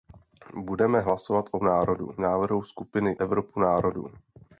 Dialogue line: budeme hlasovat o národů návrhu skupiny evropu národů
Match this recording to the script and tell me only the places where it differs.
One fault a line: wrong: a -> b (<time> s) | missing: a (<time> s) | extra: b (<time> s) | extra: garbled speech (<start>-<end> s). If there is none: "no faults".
no faults